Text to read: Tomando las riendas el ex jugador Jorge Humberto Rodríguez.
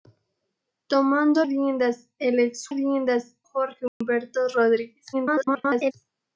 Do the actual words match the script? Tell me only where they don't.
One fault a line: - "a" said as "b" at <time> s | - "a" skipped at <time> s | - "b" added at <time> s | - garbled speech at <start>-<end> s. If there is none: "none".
- "las" skipped at 1.4 s
- "jugador" said as "riendas" at 2.7 s
- garbled speech at 5.1-5.9 s